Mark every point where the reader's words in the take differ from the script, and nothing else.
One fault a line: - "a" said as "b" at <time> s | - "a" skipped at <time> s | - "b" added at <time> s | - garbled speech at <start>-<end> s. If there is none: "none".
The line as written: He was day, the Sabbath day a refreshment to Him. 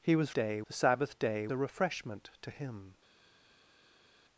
none